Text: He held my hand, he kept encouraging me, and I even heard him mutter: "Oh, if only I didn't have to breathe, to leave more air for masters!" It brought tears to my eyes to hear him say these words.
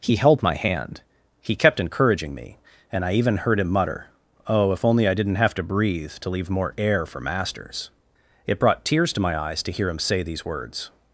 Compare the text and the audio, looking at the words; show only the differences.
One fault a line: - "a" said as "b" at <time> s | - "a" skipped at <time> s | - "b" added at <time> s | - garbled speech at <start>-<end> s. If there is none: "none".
none